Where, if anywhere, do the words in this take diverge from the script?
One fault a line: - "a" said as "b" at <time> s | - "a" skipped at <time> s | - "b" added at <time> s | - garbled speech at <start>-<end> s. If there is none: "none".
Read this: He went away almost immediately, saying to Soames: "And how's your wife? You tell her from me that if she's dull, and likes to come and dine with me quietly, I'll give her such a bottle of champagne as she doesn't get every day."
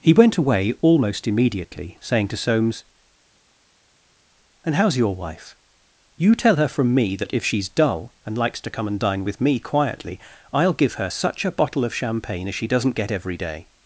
none